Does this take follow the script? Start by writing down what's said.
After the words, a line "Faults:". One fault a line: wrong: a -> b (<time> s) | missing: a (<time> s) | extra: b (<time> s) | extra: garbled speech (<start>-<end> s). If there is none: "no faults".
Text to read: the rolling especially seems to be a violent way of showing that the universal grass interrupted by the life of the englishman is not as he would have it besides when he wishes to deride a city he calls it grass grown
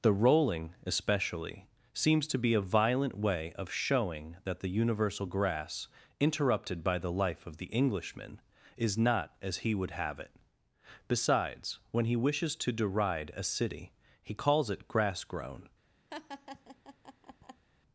the rolling especially seems to be a violent way of showing that the universal grass interrupted by the life of the englishman is not as he would have it besides when he wishes to deride a city he calls it grass grown
Faults:
no faults